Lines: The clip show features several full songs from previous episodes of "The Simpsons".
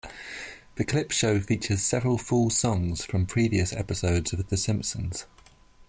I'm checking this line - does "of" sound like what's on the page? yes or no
yes